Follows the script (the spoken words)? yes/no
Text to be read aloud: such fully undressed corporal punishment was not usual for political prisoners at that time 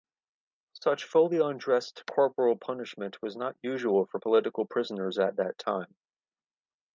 yes